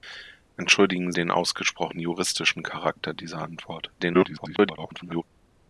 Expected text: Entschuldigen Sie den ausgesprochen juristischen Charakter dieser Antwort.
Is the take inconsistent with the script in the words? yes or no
yes